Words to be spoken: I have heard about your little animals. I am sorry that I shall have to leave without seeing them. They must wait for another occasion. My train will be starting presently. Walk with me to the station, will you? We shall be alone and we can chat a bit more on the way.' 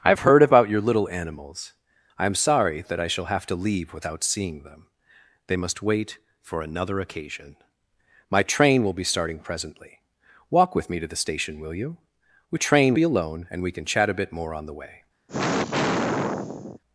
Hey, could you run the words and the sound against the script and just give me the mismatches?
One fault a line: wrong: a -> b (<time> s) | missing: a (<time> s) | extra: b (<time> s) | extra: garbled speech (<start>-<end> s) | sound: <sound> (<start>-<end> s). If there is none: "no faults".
wrong: shall -> train (12.5 s)
sound: sigh (15.3-16.8 s)